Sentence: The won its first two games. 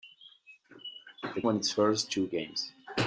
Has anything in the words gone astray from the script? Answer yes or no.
no